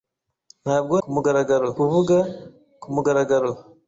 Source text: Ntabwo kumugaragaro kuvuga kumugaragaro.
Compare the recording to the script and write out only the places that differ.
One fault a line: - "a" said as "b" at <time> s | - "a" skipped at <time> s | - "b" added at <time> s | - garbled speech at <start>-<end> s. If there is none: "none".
none